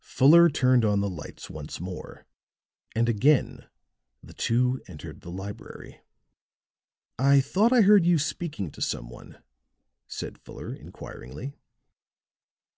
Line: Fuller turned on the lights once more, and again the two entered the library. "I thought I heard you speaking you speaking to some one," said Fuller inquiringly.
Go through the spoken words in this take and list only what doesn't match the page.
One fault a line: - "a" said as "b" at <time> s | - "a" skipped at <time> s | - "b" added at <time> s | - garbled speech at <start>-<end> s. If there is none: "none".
- "you speaking" skipped at 8.7 s